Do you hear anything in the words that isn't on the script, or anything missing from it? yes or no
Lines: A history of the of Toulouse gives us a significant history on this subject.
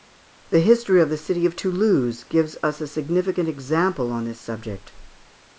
yes